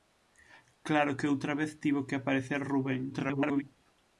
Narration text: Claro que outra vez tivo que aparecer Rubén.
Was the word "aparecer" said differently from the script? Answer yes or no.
no